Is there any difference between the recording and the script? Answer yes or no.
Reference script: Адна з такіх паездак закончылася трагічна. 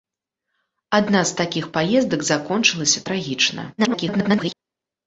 yes